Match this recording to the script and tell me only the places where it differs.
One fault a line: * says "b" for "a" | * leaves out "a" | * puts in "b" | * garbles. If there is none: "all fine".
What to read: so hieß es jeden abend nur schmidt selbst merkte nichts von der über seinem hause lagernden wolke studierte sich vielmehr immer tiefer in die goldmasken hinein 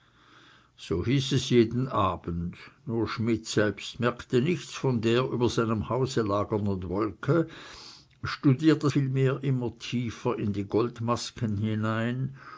* leaves out "sich"